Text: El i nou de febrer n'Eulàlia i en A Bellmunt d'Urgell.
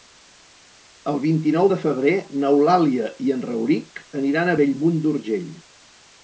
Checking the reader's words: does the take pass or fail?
fail